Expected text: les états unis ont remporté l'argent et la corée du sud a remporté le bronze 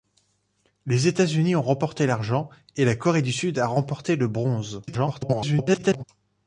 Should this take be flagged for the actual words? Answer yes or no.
yes